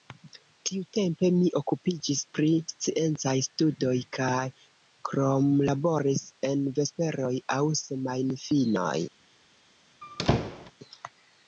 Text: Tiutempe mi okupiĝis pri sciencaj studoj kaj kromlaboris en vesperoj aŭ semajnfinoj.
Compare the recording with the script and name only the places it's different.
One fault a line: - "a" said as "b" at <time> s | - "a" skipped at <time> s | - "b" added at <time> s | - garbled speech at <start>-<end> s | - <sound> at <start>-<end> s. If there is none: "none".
- squeak at 10.0-10.7 s